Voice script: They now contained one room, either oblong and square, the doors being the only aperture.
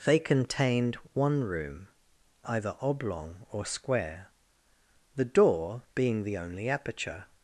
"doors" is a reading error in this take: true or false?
true